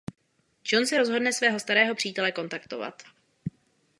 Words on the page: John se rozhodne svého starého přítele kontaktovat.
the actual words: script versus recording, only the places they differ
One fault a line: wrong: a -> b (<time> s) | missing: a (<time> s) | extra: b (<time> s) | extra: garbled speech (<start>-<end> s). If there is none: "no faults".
no faults